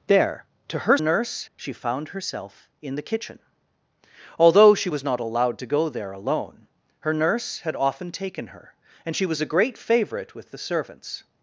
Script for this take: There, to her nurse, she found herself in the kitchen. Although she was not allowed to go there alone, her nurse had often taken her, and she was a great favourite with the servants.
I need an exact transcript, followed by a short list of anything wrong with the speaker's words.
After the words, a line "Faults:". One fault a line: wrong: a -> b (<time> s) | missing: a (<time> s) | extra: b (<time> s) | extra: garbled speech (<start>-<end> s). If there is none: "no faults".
There, to her nurse, she found herself in the kitchen. Although she was not allowed to go there alone, her nurse had often taken her, and she was a great favourite with the servants.
Faults:
no faults